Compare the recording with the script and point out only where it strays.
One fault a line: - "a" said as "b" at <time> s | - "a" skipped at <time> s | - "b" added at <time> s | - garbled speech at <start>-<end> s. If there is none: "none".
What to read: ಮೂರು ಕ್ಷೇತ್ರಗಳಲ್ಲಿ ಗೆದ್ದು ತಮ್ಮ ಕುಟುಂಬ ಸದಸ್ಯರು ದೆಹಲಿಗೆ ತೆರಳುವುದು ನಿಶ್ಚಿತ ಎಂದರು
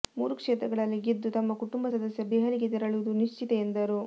none